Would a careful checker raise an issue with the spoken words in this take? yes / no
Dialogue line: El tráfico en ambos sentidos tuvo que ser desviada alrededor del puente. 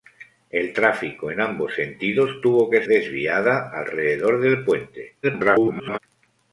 yes